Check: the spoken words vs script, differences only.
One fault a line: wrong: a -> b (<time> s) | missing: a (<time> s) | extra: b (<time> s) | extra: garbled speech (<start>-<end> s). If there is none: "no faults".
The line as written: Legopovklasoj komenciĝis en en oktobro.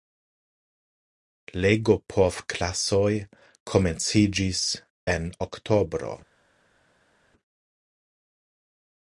missing: en (5.3 s)